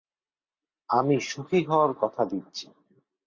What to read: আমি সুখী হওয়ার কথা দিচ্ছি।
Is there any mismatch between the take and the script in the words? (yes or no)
no